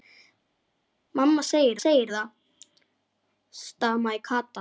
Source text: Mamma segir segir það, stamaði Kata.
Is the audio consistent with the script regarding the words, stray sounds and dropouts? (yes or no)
yes